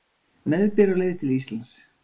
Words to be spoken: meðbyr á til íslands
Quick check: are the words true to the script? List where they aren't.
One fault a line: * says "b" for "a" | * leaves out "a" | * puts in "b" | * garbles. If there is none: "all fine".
* puts in "leið"